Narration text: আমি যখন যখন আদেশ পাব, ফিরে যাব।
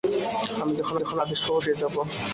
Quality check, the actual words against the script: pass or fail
pass